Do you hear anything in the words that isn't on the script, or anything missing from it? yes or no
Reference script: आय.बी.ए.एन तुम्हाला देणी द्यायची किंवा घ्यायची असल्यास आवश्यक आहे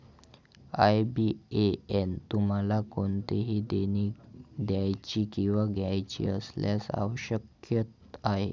yes